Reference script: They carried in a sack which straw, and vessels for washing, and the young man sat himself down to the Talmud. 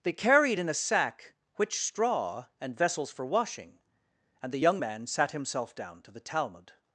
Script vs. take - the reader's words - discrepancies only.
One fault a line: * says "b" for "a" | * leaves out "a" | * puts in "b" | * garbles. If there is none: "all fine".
all fine